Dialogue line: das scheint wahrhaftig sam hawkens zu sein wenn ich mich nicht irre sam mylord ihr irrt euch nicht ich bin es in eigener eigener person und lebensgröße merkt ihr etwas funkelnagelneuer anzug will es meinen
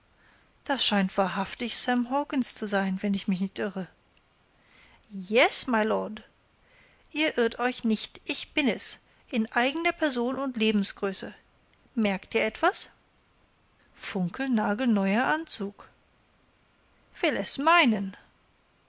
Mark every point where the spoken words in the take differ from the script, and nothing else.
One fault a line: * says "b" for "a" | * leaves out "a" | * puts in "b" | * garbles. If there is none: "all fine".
* says "yes" for "sam"
* leaves out "eigener"